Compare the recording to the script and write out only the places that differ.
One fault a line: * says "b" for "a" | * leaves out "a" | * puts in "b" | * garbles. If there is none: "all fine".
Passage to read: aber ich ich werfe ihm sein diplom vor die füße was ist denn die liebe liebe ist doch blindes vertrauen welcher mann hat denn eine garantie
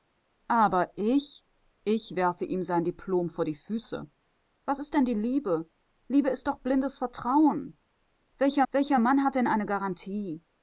* puts in "welcher"